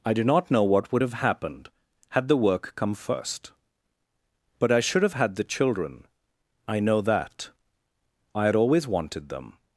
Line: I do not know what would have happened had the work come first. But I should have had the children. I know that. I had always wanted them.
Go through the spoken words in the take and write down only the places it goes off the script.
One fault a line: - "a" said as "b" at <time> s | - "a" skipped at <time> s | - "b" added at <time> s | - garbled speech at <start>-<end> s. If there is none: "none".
none